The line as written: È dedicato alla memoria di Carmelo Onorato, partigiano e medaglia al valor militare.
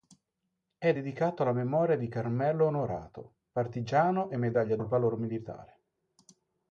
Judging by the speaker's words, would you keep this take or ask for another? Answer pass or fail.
pass